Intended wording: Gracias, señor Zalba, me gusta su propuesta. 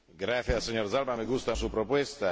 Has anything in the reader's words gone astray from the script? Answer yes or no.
no